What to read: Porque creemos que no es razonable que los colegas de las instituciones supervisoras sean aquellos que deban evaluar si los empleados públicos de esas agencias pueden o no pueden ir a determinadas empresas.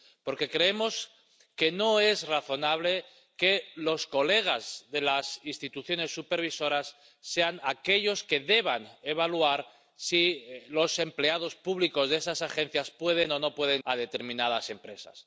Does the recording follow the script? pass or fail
fail